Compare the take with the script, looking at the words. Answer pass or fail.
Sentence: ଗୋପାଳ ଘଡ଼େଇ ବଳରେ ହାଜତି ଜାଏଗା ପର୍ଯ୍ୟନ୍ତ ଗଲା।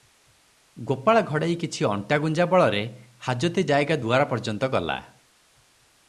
fail